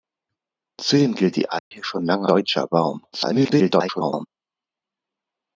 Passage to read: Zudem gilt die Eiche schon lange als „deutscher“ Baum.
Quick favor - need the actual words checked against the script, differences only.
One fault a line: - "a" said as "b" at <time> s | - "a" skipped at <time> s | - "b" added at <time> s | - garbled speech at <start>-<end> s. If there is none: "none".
- "als" skipped at 2.3 s
- garbled speech at 3.1-4.3 s